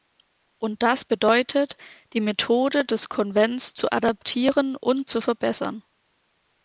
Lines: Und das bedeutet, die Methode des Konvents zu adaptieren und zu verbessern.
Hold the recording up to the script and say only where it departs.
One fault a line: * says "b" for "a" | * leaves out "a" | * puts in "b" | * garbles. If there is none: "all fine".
all fine